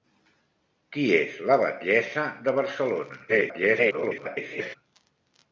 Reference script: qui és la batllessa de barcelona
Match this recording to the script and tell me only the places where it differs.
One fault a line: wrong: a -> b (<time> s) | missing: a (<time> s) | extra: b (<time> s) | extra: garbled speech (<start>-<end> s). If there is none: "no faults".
extra: garbled speech (3.3-4.8 s)